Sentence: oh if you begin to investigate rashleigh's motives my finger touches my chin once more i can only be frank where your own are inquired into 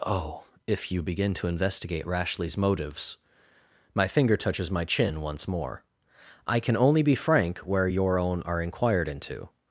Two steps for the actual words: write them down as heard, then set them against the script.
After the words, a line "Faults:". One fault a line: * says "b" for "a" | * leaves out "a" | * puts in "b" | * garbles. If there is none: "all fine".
oh if you begin to investigate rashleigh's motives my finger touches my chin once more i can only be frank where your own are inquired into
Faults:
all fine